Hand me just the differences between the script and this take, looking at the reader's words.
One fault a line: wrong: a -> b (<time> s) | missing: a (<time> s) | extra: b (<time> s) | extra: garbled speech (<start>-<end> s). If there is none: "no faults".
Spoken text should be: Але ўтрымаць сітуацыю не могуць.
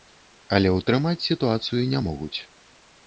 no faults